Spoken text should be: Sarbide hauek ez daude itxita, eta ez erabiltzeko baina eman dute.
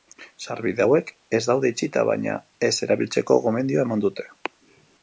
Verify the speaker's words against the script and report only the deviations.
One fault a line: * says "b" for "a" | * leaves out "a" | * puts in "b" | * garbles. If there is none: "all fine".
* says "baina" for "eta"
* says "gomendioa" for "baina"